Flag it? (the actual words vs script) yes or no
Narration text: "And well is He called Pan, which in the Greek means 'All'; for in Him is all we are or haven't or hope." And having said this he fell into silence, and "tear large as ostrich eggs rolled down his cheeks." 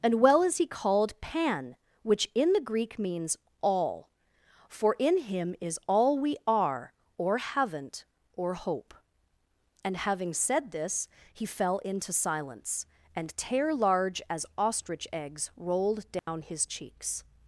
no